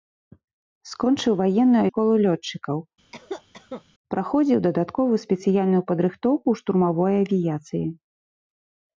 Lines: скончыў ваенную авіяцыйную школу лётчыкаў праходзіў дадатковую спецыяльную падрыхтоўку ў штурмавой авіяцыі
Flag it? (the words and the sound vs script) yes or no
yes